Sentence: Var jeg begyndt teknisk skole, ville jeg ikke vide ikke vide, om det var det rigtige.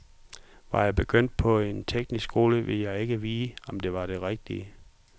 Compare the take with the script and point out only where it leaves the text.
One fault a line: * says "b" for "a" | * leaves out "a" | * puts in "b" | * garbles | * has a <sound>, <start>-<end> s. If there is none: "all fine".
* puts in "på en"
* leaves out "ikke vide"